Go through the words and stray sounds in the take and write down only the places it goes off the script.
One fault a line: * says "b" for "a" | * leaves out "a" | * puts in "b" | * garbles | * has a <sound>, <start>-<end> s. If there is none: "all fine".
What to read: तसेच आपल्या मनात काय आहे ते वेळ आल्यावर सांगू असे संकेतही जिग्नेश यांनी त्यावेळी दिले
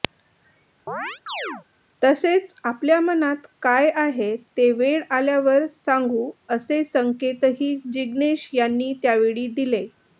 * has a chirp, 0.9-1.7 s